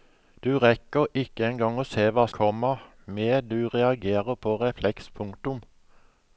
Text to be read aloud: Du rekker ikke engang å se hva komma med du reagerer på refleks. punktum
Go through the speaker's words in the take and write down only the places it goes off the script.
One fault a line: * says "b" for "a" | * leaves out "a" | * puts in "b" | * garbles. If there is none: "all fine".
all fine